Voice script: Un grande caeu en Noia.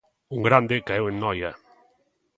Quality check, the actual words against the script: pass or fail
pass